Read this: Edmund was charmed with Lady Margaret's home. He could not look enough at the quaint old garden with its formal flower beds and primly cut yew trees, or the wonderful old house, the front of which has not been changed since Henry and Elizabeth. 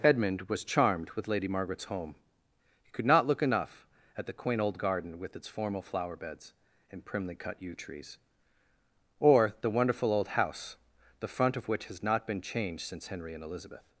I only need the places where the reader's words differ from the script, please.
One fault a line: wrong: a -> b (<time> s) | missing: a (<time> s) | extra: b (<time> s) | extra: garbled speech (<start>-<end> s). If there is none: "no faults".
no faults